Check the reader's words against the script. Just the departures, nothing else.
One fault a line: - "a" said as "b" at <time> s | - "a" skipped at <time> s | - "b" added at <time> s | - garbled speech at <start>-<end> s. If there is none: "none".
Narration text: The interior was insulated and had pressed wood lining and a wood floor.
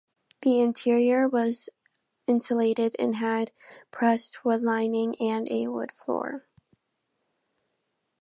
none